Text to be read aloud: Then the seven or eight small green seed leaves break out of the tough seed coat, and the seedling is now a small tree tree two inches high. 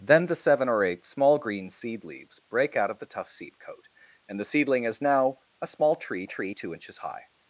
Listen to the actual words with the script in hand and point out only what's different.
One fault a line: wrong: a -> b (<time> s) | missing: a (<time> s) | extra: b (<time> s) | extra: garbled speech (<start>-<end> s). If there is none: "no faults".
no faults